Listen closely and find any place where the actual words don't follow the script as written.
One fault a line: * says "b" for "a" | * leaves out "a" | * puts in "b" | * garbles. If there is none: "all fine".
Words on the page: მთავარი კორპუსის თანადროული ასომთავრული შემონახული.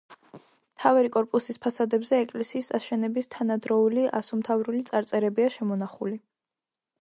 * puts in "ფასადებზე ეკლესიის აშენების"
* puts in "წარწერებია"